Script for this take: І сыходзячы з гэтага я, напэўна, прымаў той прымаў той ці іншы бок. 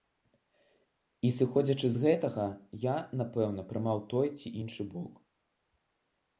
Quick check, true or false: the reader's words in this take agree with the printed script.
false